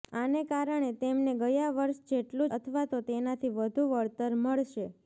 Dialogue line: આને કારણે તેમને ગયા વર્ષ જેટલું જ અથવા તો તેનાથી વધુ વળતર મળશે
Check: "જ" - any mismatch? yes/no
yes